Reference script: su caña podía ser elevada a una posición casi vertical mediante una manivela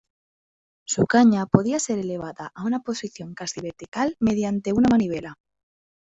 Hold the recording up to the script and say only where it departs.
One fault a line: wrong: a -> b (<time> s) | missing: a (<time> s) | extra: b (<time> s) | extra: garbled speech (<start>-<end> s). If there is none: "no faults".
no faults